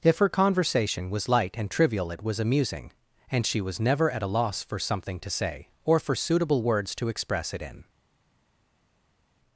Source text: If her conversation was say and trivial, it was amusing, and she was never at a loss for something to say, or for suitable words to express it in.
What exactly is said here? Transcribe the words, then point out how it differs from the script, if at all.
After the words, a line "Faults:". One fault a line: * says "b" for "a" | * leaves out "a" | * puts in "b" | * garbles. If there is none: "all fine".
If her conversation was light and trivial, it was amusing, and she was never at a loss for something to say, or for suitable words to express it in.
Faults:
* says "light" for "say"